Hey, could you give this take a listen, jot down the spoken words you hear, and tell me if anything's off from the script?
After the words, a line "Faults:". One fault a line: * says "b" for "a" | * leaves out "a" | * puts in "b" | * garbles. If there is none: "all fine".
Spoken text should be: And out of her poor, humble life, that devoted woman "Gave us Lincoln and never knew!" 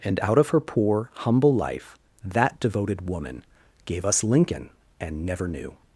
And out of her poor, humble life, that devoted woman "Gave us Lincoln and never knew!"
Faults:
all fine